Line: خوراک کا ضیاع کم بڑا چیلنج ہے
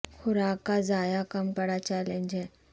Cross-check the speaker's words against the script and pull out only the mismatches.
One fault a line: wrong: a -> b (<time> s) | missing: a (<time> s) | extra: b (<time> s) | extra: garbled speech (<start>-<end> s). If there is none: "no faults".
no faults